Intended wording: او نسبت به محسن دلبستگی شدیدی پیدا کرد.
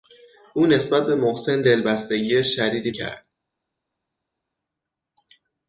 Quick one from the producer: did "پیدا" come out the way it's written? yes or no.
no